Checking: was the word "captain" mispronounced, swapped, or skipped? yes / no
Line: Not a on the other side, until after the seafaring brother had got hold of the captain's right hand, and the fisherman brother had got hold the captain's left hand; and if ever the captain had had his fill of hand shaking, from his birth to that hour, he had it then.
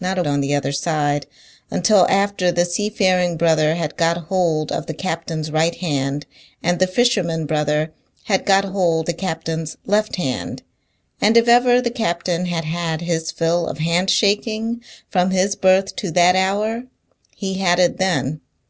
no